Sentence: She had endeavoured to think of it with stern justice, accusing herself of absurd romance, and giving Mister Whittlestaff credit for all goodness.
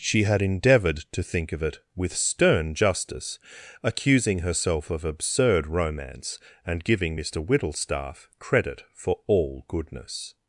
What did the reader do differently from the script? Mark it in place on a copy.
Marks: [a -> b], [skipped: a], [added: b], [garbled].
She had endeavoured to think of it with stern justice, accusing herself of absurd romance, and giving Mister Whittlestaff credit for all goodness.